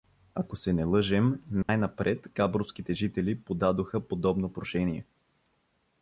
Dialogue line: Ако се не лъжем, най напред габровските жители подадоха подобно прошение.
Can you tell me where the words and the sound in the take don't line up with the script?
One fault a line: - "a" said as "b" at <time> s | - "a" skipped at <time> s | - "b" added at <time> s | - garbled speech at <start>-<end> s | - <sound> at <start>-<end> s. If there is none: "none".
- dropout at 1.6-1.7 s